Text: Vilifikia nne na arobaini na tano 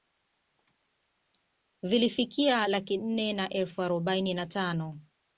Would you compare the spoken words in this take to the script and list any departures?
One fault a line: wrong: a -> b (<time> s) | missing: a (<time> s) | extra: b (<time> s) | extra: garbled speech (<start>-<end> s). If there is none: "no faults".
extra: laki (2.6 s)
extra: elfu (3.5 s)